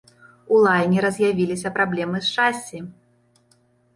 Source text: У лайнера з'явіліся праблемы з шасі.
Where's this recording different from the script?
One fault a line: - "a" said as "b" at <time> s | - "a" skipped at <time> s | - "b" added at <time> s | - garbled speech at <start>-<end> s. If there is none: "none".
none